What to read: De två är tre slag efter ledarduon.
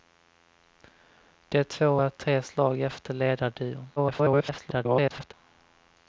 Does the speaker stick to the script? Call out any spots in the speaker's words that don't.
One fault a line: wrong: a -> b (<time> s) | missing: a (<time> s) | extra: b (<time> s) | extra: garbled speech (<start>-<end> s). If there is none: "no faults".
extra: garbled speech (4.0-5.3 s)